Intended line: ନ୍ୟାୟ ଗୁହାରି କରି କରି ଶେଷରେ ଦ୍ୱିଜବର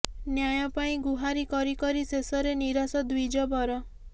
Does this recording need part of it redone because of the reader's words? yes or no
yes